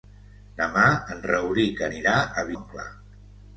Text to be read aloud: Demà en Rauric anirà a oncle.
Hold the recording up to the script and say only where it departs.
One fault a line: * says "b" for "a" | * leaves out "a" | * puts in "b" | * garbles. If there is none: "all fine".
all fine